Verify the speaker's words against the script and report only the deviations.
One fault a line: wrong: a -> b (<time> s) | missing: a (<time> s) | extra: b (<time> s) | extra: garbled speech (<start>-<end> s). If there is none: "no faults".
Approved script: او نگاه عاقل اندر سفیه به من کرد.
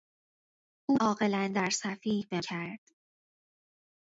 missing: نگاه (1.0 s)
missing: من (2.4 s)